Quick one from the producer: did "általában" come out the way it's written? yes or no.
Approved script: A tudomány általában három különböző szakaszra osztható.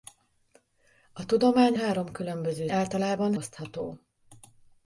no